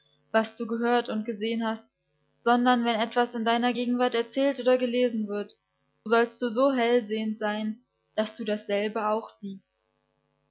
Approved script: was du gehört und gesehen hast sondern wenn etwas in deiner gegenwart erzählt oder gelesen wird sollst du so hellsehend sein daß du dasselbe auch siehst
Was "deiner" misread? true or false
false